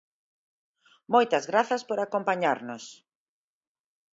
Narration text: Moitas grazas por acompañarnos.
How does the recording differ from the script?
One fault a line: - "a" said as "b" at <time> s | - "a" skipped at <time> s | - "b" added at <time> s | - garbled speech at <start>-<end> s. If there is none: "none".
none